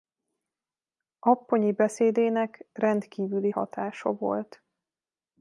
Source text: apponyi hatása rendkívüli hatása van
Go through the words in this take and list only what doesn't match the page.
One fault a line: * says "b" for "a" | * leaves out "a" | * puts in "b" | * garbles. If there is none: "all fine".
* says "beszédének" for "hatása"
* says "volt" for "van"